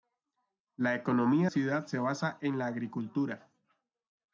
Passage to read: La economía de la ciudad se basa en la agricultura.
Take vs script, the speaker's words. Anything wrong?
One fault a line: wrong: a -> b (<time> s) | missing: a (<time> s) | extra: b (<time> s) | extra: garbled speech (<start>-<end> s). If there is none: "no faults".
missing: de la (1.5 s)